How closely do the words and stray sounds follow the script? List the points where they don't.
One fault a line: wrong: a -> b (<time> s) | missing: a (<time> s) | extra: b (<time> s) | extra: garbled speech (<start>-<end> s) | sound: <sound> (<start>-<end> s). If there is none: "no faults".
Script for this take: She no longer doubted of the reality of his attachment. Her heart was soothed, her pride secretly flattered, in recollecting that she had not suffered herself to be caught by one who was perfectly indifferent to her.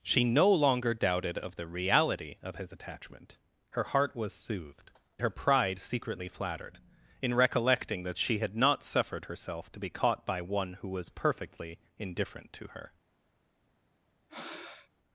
sound: breath (14.3-14.9 s)